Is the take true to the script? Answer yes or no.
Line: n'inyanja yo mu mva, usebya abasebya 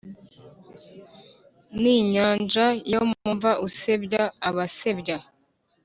yes